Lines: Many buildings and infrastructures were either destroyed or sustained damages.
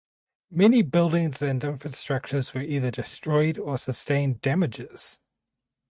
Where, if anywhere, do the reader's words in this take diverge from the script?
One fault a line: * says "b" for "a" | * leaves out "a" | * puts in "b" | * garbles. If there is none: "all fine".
all fine